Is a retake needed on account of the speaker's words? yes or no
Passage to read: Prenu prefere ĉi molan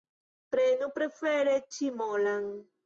no